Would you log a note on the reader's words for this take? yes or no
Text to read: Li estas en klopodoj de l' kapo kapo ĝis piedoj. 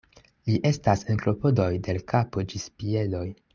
yes